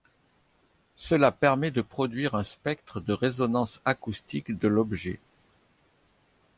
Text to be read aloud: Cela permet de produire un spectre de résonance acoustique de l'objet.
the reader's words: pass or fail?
pass